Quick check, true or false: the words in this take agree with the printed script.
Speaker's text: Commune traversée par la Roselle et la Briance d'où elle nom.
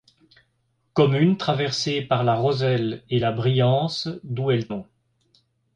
true